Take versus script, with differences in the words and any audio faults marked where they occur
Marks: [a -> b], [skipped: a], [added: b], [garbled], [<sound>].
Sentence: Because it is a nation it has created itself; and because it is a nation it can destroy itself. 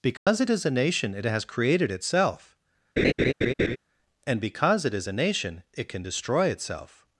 Because [dropout] it is a nation it has created itself; [laugh] and because it is a nation it can destroy itself.